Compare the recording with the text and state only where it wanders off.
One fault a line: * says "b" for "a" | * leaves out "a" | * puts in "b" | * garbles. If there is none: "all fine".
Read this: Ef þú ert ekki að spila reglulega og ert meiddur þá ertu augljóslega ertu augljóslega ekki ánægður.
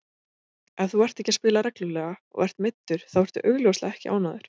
* leaves out "ertu augljóslega"